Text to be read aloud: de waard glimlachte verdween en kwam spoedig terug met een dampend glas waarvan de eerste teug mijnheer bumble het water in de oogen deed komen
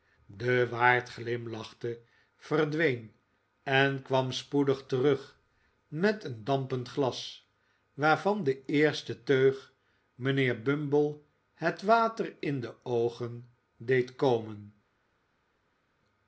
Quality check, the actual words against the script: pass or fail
pass